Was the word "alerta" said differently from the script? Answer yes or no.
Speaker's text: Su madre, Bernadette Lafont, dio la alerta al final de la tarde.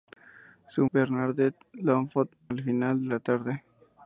yes